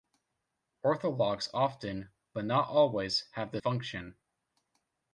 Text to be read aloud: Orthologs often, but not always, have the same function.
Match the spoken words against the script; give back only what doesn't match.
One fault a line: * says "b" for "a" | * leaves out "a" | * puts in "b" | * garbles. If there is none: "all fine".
* leaves out "same"